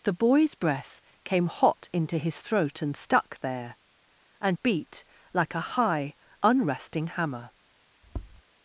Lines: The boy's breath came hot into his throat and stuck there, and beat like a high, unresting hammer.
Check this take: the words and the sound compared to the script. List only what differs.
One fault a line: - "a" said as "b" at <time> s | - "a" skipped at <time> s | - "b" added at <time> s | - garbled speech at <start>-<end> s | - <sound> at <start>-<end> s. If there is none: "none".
- tap at 8.0-8.4 s